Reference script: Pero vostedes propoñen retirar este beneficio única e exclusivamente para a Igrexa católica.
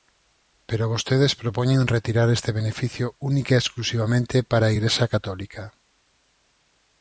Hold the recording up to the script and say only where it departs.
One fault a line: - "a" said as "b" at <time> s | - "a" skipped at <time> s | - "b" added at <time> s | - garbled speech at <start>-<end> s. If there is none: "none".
none